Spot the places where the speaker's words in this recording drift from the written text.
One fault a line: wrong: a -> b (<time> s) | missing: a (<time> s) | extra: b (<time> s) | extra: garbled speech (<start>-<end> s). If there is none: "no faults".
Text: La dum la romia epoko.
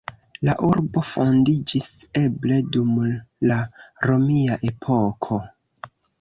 extra: urbo fondiĝis eble (0.7 s)